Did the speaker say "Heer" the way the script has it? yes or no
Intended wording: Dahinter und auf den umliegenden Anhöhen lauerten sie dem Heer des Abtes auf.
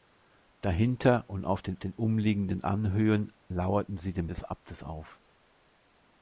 no